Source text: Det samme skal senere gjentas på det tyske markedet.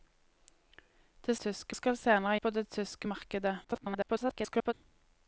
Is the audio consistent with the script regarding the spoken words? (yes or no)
no